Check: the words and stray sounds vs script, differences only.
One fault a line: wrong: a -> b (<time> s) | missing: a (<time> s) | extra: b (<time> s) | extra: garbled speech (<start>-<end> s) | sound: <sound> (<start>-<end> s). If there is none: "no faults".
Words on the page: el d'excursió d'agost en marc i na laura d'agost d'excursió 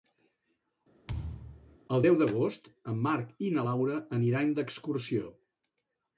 sound: thud (1.1-1.8 s)
wrong: d'excursió -> deu (2.0 s)
wrong: d'agost -> aniran (4.2 s)